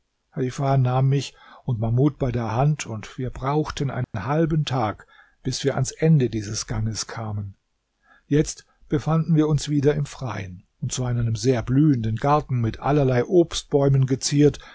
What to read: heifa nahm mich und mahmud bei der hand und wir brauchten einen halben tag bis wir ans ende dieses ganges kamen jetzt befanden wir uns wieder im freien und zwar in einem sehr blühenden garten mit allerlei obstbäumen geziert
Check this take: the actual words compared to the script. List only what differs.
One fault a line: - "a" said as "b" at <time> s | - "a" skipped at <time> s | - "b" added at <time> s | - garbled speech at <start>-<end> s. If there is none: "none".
none